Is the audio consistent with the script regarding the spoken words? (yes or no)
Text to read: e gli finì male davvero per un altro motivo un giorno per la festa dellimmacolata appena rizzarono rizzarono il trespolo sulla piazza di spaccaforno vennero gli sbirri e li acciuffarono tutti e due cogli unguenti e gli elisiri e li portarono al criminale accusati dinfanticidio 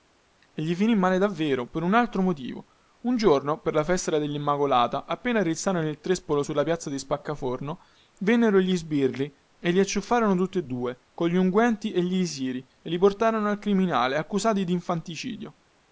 no